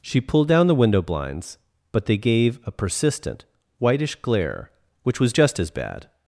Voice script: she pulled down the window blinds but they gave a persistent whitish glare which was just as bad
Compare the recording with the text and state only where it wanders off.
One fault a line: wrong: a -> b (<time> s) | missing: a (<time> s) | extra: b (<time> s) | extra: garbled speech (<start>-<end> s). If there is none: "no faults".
no faults